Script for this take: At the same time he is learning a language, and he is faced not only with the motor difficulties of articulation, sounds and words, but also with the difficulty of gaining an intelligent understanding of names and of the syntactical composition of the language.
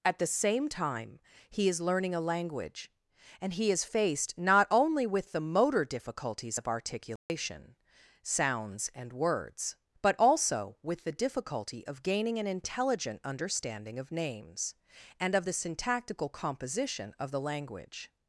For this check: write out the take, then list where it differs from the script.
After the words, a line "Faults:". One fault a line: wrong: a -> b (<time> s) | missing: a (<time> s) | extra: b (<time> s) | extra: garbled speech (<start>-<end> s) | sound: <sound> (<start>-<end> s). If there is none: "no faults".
At the same time he is learning a language, and he is faced not only with the motor difficulties of articulation, sounds and words, but also with the difficulty of gaining an intelligent understanding of names and of the syntactical composition of the language.
Faults:
sound: dropout (7.2-7.3 s)